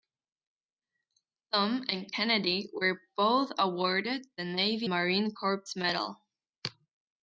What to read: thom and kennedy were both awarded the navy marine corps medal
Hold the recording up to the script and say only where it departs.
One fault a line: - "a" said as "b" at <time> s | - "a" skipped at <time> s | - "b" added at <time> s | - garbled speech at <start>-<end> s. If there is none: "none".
none